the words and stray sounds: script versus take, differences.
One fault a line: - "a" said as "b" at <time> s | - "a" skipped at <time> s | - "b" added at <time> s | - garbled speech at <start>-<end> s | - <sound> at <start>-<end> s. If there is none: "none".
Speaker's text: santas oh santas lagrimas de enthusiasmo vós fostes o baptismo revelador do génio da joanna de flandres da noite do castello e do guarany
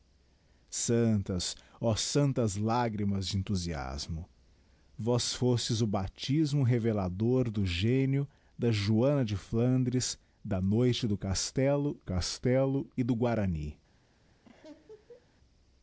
- "castello" added at 12.0 s
- laugh at 14.4-15.3 s